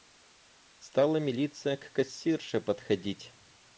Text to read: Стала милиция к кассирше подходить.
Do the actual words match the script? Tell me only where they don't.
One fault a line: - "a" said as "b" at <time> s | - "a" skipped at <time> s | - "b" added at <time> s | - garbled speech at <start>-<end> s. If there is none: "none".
none